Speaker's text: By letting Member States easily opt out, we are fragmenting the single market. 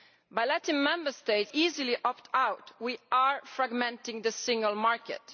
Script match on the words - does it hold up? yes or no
yes